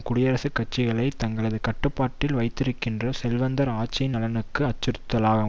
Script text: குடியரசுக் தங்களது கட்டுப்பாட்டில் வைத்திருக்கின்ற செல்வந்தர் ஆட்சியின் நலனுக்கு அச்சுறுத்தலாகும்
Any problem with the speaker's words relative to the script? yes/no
yes